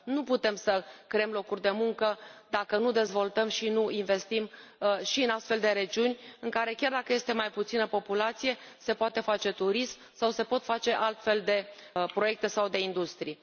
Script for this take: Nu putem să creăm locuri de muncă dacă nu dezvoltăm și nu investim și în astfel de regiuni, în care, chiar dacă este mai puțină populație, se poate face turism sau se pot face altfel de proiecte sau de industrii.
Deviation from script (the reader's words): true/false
false